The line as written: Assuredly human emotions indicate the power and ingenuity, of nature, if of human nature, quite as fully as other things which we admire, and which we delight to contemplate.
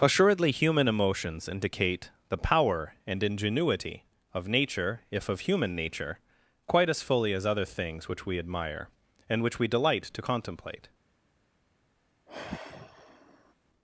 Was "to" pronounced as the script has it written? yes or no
yes